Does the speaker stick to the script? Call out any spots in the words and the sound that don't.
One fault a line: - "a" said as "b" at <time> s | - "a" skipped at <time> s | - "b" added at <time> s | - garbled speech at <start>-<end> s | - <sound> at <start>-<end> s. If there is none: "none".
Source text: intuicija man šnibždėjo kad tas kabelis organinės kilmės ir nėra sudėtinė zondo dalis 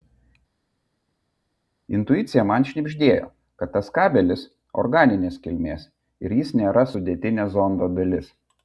- "jis" added at 6.4 s